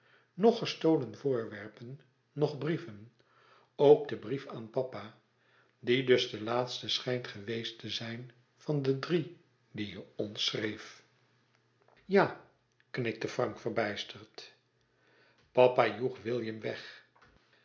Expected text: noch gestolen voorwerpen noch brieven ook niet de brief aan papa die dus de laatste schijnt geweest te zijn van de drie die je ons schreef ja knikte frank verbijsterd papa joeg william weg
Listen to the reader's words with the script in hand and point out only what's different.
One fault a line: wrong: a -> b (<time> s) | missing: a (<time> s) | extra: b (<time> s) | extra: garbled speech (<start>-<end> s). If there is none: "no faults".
missing: niet (4.1 s)